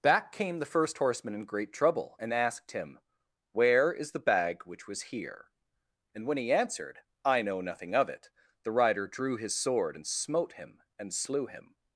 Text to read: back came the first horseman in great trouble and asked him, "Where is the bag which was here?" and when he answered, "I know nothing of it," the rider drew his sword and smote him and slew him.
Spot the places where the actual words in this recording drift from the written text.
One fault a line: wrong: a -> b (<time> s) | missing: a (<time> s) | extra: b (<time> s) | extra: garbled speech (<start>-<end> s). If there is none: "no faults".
no faults